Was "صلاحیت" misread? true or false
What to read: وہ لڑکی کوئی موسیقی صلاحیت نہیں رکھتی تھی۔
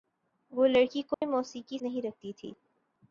true